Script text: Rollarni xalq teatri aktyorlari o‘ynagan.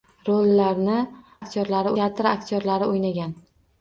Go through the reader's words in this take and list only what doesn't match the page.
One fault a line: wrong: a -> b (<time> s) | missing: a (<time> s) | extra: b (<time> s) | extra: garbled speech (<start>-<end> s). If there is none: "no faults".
wrong: xalq -> aktyorlari (1.4 s)